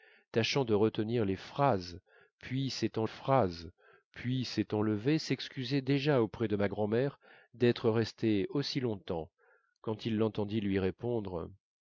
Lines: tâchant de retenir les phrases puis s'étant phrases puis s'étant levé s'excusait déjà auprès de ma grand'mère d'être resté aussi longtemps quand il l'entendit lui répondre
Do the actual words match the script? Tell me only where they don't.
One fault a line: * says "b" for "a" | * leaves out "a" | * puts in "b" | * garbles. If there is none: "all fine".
all fine